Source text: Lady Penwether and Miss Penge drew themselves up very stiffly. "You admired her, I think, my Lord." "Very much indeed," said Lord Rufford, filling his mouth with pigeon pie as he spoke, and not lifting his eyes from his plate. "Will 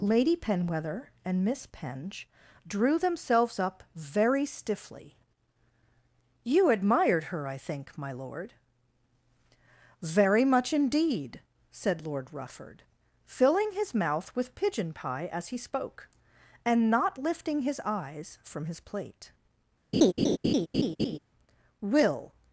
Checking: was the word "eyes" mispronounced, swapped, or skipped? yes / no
no